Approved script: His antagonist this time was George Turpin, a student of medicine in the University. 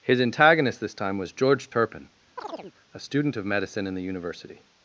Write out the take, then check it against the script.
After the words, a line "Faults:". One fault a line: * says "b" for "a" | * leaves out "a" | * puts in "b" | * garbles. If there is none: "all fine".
His antagonist this time was George Turpin, a student of medicine in the University.
Faults:
all fine